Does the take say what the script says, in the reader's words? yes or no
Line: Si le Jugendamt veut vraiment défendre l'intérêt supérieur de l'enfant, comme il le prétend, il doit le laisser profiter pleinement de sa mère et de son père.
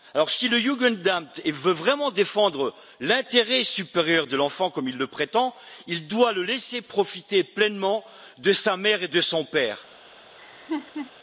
yes